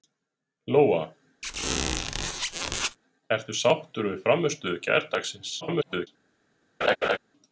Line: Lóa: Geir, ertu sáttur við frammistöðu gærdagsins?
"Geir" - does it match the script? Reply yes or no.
no